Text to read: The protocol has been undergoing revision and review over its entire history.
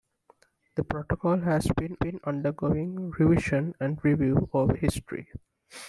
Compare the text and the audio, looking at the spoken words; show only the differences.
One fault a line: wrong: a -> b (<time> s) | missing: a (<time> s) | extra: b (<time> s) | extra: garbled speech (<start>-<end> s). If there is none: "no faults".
extra: been (2.0 s)
missing: its entire (4.8 s)